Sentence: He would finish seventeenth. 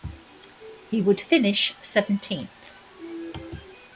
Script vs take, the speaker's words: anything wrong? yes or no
no